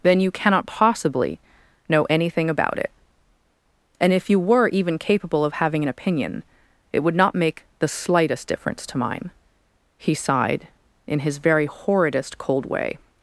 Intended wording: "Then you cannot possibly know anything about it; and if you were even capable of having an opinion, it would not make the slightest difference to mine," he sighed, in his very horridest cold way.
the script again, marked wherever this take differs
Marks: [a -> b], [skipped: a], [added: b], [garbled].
"Then you cannot possibly know anything about it; and if you were even capable of having an opinion, it would not make the slightest difference to mine," he sighed, in his very horridest cold way.